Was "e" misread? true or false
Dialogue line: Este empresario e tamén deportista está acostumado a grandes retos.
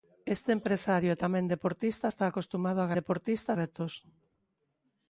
false